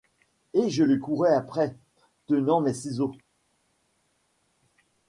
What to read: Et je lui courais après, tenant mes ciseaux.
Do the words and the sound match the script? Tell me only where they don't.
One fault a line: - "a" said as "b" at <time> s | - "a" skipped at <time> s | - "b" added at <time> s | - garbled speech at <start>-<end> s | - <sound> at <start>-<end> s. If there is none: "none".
none